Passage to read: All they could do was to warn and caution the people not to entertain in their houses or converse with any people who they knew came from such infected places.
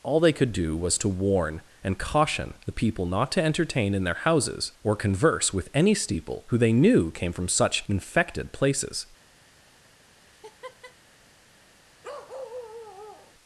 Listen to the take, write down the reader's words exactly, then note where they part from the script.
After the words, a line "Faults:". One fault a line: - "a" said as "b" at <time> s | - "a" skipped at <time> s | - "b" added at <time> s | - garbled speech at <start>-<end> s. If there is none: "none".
All they could do was to warn and caution the people not to entertain in their houses or converse with any steeple who they knew came from such infected places.
Faults:
- "people" said as "steeple" at 5.9 s